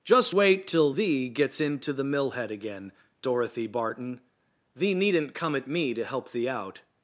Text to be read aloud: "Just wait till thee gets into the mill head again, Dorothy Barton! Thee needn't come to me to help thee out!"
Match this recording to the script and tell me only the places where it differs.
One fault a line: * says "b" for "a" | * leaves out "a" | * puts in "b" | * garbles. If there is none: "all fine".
* says "at" for "to"